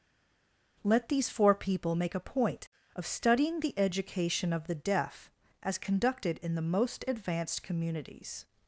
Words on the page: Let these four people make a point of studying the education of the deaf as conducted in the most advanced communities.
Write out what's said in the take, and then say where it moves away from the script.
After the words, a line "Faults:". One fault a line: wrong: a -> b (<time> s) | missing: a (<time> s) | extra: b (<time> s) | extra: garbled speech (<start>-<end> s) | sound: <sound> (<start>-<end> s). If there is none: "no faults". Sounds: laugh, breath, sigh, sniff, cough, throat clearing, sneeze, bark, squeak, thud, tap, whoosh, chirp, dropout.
Let these four people make a point of studying the education of the deaf as conducted in the most advanced communities.
Faults:
no faults